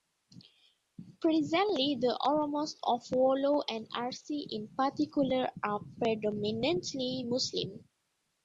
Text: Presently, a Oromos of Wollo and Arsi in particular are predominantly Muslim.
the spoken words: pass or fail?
fail